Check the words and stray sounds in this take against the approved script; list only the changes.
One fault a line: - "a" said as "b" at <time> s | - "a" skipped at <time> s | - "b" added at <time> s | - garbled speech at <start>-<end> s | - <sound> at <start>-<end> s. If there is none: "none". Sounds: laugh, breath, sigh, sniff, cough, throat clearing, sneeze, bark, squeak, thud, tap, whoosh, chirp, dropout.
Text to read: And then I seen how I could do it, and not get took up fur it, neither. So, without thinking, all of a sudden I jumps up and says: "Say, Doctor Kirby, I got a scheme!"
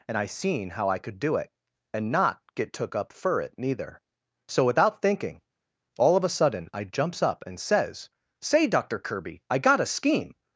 - "then" skipped at 0.2 s